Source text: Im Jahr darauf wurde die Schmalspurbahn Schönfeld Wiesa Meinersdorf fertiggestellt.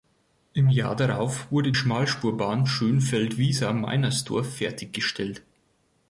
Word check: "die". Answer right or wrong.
wrong